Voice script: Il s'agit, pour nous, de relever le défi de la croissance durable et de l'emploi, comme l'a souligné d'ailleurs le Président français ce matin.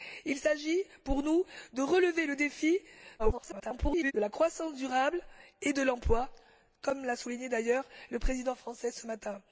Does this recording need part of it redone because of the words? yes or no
yes